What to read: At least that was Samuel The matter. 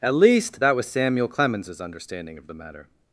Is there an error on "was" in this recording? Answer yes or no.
no